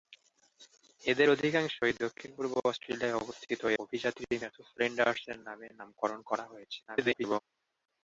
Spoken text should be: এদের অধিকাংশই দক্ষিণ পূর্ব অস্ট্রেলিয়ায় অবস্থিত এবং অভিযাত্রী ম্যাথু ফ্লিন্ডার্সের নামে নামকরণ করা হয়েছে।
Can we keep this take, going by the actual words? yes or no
no